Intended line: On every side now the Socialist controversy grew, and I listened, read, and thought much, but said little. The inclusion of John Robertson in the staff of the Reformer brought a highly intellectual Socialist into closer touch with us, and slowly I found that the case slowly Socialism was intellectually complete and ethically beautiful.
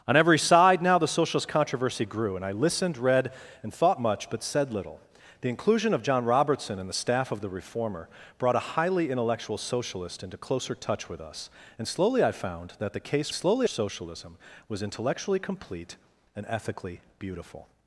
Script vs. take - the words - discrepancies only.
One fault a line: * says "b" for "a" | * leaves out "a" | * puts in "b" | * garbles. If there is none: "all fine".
all fine